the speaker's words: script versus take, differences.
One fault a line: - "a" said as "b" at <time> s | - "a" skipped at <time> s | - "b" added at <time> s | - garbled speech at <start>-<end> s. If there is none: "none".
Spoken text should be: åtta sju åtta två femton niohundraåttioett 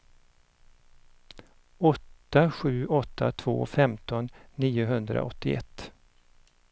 none